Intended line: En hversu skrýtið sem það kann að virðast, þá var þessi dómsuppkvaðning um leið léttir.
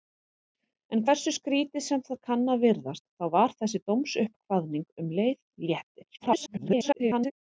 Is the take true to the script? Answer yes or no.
no